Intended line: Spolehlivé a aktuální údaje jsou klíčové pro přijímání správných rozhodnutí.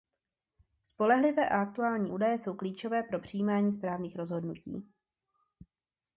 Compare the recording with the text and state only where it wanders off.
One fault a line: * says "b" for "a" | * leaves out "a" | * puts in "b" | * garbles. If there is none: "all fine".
all fine